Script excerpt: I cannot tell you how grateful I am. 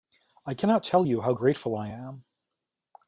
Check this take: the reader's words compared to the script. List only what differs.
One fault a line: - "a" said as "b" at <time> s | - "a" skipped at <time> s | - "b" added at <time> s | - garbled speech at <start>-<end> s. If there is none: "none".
none